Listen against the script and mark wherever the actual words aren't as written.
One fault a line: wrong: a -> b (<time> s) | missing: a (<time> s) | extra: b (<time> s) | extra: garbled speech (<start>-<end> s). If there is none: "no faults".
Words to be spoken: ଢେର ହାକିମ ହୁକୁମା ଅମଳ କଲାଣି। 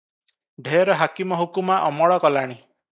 no faults